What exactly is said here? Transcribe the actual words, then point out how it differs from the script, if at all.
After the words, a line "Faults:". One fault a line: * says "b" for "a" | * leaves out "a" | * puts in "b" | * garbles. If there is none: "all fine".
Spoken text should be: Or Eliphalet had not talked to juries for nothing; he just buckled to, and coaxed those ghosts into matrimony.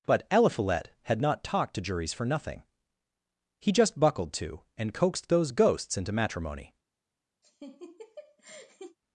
But Eliphalet had not talked to juries for nothing; he just buckled to, and coaxed those ghosts into matrimony.
Faults:
* says "But" for "Or"